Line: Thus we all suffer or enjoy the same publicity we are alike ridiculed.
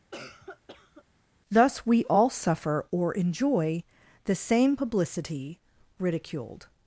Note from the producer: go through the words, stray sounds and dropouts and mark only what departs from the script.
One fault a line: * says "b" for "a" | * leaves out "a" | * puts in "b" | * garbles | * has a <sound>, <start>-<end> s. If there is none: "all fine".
* has a cough, 0.1-1.0 s
* leaves out "we are alike"